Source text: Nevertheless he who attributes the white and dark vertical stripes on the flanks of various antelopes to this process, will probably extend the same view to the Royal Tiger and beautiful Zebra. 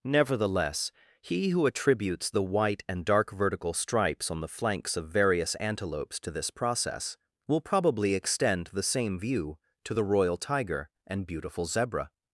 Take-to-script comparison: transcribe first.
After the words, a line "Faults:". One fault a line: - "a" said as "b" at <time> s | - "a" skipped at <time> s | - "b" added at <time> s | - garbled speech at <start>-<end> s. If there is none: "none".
Nevertheless he who attributes the white and dark vertical stripes on the flanks of various antelopes to this process, will probably extend the same view to the Royal Tiger and beautiful Zebra.
Faults:
none